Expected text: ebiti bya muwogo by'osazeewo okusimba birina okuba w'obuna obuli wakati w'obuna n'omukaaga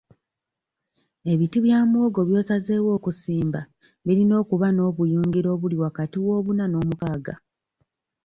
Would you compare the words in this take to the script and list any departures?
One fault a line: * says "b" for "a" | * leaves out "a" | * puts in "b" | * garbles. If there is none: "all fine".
* says "n'obuyungiro" for "w'obuna"